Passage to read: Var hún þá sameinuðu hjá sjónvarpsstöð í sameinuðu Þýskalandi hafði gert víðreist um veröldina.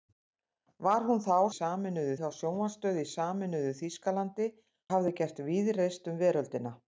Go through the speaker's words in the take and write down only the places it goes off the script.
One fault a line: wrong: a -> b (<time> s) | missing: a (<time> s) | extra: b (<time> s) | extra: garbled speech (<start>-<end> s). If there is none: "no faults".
no faults